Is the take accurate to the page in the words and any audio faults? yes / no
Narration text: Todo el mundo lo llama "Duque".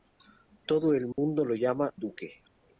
no